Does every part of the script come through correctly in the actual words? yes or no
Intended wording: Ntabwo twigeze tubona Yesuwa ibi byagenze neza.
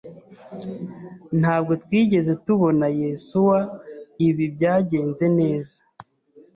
yes